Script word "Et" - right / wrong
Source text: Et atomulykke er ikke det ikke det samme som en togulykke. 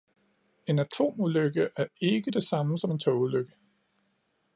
wrong